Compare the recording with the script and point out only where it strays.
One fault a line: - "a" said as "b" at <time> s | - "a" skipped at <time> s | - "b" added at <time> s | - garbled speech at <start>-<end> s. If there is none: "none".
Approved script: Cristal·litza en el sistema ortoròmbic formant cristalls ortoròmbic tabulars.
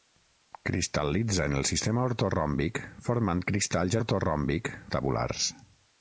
none